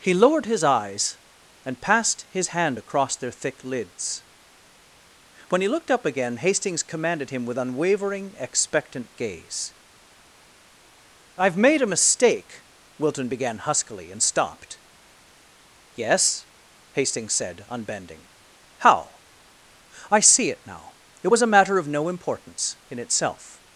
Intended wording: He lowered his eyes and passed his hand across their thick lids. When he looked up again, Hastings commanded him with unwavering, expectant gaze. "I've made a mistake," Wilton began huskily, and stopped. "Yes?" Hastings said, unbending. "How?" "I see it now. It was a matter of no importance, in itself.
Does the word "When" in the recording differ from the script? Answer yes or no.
no